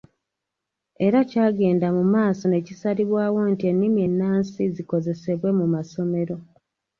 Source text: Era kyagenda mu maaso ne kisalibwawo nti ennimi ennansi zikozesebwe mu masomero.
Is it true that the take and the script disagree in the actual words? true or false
false